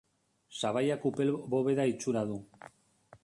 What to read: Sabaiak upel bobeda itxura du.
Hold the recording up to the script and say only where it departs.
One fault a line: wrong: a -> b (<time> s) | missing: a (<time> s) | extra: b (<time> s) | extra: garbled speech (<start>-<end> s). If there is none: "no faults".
no faults